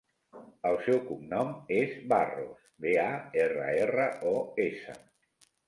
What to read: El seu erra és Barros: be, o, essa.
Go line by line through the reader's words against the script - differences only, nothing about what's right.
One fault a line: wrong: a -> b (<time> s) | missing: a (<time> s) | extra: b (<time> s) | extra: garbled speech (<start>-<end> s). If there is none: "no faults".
wrong: erra -> cognom (1.1 s)
extra: a erra erra (3.0 s)